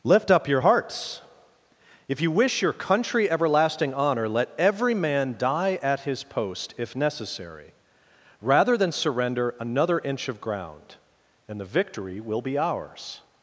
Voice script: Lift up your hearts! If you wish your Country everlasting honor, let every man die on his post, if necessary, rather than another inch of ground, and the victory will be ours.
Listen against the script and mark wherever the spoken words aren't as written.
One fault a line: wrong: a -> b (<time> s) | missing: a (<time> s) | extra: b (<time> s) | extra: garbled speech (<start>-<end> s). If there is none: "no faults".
wrong: on -> at (5.8 s)
extra: surrender (8.9 s)